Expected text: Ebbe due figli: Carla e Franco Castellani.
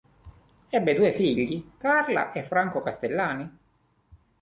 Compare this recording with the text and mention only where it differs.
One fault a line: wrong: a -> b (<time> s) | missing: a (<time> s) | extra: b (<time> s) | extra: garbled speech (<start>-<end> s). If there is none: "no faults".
no faults